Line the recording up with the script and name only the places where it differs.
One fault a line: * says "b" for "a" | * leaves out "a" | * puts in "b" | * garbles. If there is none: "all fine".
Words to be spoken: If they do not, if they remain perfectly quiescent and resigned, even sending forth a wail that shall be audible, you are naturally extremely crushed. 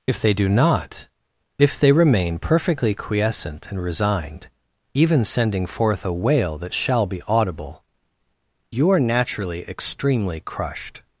all fine